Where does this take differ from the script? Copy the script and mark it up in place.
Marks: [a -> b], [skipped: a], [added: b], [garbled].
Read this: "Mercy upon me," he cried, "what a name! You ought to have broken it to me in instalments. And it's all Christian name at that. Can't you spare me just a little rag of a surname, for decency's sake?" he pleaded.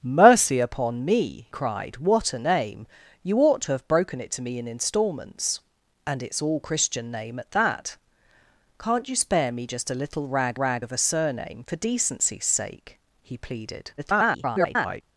"Mercy upon me," [skipped: he] cried, "what a name! You ought to have broken it to me in instalments. And it's all Christian name at that. Can't you spare me just a little rag [added: rag] of a surname, for decency's sake?" he pleaded. [garbled]